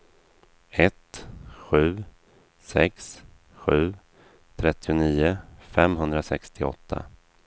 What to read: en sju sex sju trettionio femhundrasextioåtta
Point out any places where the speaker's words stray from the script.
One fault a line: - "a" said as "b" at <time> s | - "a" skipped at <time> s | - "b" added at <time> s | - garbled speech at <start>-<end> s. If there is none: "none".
- "en" said as "ett" at 0.7 s